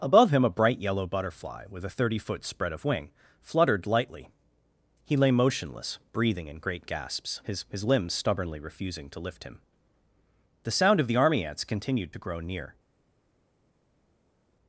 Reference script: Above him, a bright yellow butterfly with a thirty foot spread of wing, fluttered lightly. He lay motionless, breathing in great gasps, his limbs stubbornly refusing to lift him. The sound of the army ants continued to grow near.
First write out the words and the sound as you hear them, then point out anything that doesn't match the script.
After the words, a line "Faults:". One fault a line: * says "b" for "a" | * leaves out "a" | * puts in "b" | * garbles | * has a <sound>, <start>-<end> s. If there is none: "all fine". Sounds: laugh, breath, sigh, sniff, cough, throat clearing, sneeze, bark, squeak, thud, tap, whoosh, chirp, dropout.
Above him, a bright yellow butterfly with a thirty foot spread of wing, fluttered lightly. He lay motionless, breathing in great gasps, his his limbs stubbornly refusing to lift him. The sound of the army ants continued to grow near.
Faults:
* puts in "his"